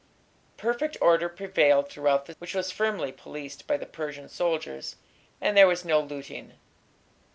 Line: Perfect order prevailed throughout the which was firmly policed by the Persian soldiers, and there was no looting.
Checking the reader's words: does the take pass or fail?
pass